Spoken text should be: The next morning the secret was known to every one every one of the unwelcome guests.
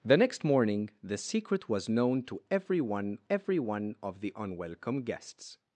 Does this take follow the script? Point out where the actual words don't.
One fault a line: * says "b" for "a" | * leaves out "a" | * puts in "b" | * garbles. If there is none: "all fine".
all fine